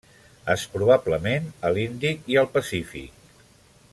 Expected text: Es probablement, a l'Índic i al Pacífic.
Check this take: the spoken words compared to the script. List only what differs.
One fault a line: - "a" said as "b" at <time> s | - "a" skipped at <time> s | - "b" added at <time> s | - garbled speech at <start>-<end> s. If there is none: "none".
none